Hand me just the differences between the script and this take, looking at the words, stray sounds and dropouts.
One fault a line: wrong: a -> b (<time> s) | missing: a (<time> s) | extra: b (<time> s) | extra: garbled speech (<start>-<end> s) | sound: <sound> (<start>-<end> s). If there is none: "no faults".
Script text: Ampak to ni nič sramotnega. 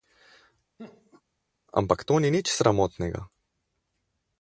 sound: laugh (0.8-1.2 s)